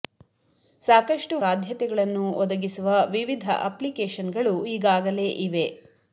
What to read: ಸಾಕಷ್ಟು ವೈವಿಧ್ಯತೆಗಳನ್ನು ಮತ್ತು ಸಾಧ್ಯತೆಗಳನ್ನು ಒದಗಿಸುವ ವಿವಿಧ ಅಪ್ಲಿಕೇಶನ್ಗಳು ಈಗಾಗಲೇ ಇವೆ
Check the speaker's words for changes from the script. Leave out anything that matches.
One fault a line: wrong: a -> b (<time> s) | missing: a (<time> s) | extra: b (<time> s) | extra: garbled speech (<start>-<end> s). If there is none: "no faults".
missing: ವೈವಿಧ್ಯತೆಗಳನ್ನು ಮತ್ತು (1.4 s)